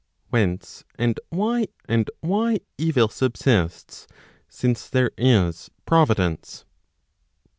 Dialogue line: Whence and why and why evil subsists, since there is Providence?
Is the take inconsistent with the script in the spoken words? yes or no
no